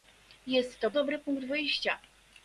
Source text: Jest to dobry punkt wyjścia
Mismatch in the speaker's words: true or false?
false